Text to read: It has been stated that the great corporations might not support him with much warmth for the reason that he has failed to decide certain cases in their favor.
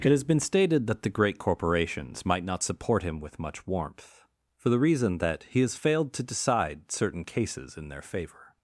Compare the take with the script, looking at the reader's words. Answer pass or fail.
pass